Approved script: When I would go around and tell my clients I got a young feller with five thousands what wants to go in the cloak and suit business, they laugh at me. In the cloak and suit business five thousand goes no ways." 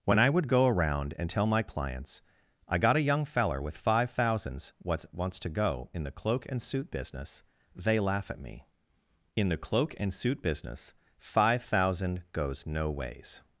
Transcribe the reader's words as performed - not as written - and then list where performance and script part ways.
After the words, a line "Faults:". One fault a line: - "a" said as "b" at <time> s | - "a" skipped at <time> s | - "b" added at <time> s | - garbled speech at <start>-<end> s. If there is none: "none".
When I would go around and tell my clients I got a young feller with five thousands what wants to go in the cloak and suit business, they laugh at me. In the cloak and suit business five thousand goes no ways."
Faults:
none